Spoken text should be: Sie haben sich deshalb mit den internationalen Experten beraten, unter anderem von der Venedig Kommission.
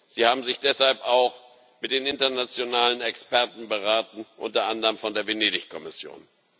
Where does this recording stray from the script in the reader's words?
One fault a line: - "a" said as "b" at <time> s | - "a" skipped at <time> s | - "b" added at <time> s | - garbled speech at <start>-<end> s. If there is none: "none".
- "auch" added at 1.0 s